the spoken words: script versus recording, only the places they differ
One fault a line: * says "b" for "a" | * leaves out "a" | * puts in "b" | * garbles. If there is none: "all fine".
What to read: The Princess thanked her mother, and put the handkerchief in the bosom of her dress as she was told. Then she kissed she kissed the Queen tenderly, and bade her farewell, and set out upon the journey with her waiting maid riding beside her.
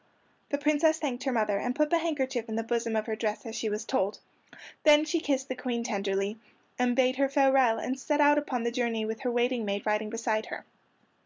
* leaves out "she kissed"